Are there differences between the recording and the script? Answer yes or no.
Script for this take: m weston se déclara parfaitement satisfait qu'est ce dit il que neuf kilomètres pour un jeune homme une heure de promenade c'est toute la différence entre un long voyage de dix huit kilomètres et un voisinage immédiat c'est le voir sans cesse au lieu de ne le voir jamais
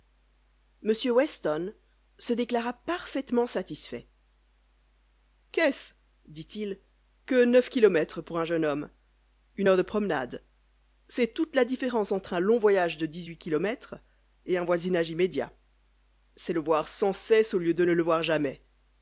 no